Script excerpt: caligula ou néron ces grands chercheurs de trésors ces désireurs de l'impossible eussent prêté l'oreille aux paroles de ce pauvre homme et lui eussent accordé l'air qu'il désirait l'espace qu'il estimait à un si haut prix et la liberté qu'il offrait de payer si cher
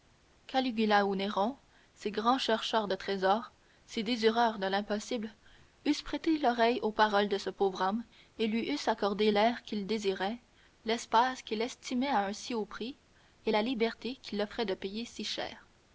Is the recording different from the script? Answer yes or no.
no